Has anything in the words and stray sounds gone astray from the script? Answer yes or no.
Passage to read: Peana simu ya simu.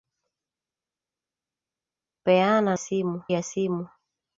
no